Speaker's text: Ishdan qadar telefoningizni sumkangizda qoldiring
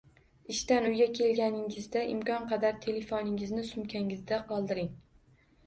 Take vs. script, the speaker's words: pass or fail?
fail